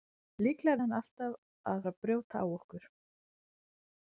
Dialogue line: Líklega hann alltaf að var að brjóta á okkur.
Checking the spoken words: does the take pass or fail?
pass